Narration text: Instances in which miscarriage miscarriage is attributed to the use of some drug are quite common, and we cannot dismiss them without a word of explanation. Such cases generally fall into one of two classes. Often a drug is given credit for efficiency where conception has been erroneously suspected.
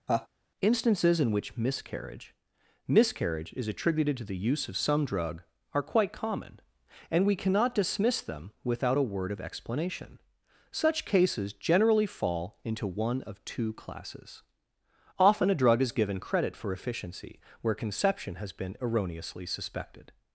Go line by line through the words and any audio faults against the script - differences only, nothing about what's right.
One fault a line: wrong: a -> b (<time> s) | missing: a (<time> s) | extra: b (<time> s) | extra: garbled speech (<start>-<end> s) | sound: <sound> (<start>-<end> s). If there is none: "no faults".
sound: laugh (0.1-0.3 s)